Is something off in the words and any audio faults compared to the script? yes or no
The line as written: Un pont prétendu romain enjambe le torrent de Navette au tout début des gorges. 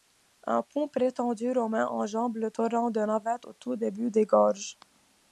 no